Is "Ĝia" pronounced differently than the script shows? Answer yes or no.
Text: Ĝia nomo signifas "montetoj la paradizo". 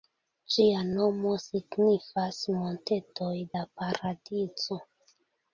no